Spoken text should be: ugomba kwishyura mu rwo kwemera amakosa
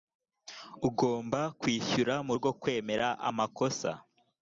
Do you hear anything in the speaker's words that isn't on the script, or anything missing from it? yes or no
no